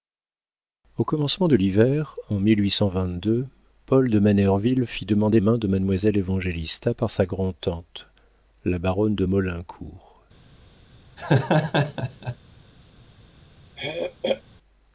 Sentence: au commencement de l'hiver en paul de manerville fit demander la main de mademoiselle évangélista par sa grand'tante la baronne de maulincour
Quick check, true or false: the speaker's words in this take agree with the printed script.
false